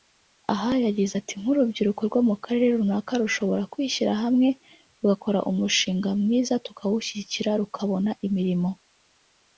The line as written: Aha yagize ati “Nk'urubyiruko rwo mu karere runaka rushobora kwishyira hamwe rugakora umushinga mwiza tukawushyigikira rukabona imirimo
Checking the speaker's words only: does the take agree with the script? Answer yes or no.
yes